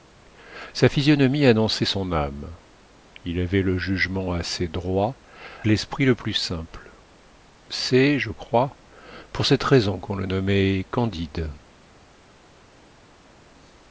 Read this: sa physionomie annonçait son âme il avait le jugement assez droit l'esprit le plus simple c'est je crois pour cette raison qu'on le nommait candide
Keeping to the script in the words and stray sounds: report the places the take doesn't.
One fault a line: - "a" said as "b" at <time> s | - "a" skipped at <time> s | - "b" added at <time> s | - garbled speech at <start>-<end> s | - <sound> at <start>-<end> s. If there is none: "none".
none